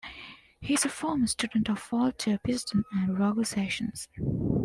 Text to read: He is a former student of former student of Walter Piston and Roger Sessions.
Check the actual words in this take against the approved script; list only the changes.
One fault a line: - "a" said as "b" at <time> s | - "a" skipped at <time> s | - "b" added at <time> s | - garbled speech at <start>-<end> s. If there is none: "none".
- "former student of" skipped at 1.9 s